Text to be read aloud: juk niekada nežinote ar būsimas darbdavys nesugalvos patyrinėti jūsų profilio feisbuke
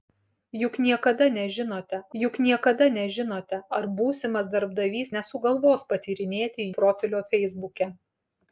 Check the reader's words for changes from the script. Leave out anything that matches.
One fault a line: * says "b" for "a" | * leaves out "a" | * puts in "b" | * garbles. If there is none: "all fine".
* puts in "juk niekada nežinote"
* leaves out "jūsų"